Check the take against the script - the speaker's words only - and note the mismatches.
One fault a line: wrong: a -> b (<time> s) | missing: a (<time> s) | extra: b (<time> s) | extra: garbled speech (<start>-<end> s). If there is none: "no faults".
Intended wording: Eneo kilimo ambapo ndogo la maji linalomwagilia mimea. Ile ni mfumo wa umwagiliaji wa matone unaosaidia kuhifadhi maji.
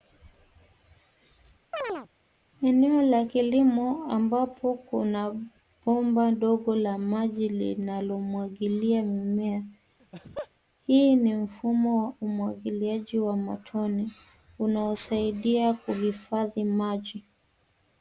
extra: la (3.0 s)
extra: kuna bomba (4.7 s)
wrong: Ile -> Hii (10.9 s)